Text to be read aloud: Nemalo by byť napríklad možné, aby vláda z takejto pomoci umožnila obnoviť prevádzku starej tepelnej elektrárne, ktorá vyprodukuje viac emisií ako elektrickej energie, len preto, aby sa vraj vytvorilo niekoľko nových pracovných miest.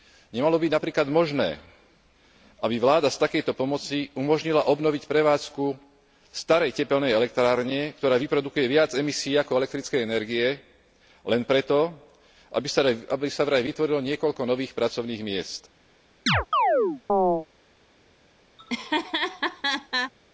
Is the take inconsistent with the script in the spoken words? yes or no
no